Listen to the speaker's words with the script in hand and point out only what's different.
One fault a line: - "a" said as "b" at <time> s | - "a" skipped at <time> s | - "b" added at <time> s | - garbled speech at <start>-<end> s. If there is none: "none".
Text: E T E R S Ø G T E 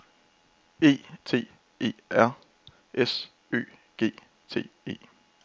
none